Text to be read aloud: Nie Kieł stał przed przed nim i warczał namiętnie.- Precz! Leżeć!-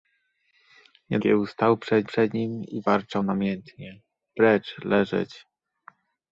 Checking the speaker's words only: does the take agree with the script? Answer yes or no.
yes